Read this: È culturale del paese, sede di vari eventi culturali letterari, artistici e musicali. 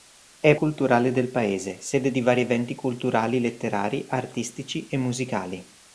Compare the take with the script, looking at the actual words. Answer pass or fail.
pass